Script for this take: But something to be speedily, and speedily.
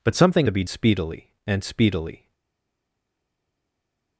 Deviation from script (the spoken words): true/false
false